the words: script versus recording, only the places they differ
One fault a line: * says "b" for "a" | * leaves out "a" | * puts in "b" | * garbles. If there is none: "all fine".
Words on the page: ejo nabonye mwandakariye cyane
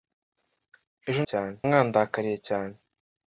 * says "cyane" for "nabonye"